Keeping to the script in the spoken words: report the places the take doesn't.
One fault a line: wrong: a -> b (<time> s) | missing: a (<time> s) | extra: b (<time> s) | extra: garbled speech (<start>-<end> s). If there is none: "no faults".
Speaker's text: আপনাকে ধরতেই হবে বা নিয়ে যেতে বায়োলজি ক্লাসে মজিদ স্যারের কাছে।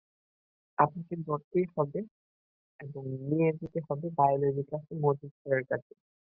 wrong: বা -> এবং (2.8 s)
extra: হবে (3.9 s)